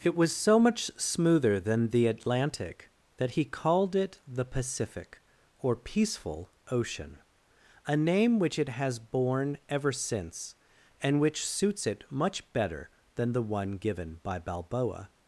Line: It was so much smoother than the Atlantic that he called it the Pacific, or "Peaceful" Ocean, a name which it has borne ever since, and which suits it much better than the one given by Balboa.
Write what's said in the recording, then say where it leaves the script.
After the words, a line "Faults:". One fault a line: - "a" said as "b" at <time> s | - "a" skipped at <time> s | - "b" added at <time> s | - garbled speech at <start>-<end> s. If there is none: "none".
It was so much smoother than the Atlantic that he called it the Pacific, or "Peaceful" Ocean, a name which it has borne ever since, and which suits it much better than the one given by Balboa.
Faults:
none